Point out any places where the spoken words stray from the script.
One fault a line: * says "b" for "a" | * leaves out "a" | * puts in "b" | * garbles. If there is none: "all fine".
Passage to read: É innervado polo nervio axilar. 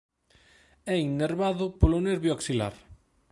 all fine